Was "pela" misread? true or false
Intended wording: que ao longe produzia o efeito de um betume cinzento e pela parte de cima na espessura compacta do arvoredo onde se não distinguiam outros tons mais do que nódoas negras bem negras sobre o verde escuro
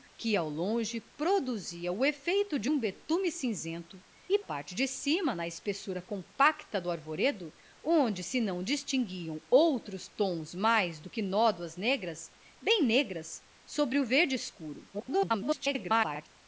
true